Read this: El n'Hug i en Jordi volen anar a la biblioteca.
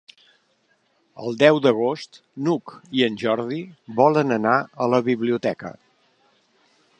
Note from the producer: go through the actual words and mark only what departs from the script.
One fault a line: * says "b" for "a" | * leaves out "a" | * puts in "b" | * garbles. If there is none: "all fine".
* puts in "deu d'agost"